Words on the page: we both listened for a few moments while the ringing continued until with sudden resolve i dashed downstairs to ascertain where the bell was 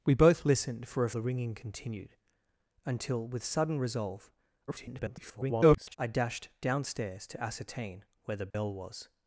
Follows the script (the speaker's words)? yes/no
no